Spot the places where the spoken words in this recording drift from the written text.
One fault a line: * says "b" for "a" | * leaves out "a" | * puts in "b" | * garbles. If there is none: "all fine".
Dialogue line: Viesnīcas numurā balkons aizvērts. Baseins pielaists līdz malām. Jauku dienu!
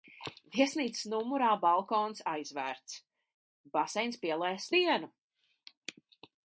* leaves out "līdz malām Jauku"